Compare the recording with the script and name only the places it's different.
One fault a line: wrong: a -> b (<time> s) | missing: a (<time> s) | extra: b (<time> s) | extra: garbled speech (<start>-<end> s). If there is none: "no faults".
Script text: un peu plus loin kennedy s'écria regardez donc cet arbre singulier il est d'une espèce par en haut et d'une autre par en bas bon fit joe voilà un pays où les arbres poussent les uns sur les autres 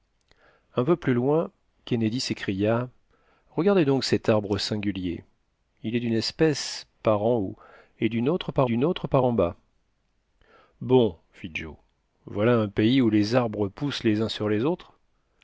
extra: d'une autre par (8.6 s)